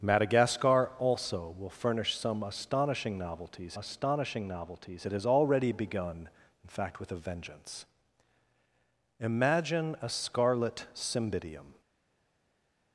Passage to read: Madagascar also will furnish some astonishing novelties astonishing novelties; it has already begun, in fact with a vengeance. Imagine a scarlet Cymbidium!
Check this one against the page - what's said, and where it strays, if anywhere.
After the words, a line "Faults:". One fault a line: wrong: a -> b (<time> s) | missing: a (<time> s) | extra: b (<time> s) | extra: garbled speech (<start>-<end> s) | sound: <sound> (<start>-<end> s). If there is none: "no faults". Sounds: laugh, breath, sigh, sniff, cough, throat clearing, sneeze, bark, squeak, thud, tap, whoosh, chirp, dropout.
Madagascar also will furnish some astonishing novelties astonishing novelties; it has already begun, in fact with a vengeance. Imagine a scarlet Cymbidium!
Faults:
no faults